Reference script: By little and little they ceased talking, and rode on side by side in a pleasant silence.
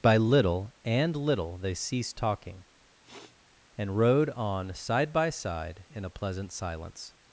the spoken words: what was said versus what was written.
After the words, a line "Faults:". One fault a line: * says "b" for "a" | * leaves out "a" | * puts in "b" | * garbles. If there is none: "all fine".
By little and little they ceased talking, and rode on side by side in a pleasant silence.
Faults:
all fine